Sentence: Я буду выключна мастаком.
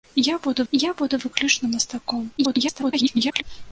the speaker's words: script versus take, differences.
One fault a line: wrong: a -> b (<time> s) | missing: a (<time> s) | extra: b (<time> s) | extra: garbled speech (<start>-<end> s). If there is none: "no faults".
extra: я буду (0.7 s)
extra: garbled speech (2.4-3.4 s)